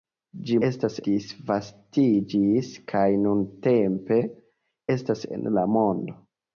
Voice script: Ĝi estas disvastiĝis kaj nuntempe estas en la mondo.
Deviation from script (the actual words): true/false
false